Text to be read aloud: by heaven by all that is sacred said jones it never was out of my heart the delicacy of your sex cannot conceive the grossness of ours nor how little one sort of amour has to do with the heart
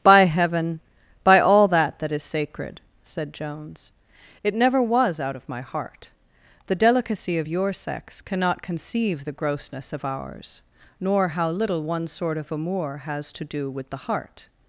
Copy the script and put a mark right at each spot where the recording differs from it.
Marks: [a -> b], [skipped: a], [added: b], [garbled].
by heaven by all that [added: that] is sacred said jones it never was out of my heart the delicacy of your sex cannot conceive the grossness of ours nor how little one sort of amour has to do with the heart